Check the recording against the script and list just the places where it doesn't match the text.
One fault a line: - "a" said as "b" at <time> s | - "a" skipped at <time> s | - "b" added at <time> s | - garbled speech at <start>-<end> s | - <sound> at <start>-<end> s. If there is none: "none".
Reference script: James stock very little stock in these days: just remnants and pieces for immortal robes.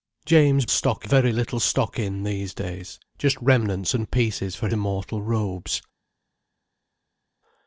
none